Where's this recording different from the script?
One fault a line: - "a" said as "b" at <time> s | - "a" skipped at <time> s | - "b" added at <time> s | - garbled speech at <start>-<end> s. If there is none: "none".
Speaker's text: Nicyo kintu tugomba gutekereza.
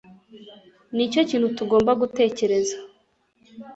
none